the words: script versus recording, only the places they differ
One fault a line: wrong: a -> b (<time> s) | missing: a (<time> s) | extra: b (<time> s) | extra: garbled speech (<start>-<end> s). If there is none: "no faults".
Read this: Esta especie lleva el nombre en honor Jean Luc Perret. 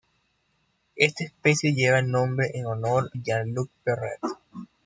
no faults